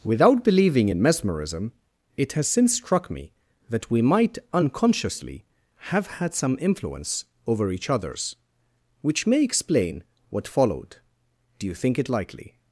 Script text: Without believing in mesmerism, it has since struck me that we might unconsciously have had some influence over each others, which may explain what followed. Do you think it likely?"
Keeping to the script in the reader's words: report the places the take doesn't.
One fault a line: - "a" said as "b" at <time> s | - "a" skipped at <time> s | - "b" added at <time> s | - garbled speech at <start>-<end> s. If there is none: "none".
none